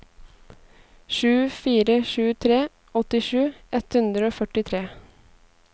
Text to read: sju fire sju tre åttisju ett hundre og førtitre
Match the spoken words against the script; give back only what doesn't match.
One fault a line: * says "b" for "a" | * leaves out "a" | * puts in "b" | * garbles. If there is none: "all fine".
all fine